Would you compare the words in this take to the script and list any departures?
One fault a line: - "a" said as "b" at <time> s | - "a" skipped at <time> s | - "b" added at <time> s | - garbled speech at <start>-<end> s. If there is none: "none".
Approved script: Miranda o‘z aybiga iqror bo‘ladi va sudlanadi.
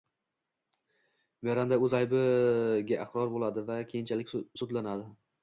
- "keyinchalik" added at 3.9 s